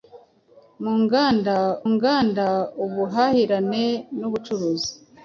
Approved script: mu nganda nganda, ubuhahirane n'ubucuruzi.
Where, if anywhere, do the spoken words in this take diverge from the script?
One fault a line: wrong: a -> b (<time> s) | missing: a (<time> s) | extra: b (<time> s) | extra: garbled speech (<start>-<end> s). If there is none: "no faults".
no faults